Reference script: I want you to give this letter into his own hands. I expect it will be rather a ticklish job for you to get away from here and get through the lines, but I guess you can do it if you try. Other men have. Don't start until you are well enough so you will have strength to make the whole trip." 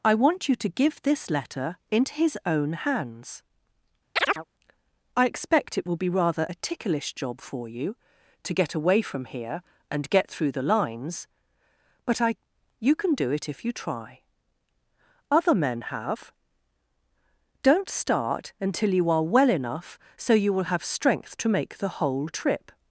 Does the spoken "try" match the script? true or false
true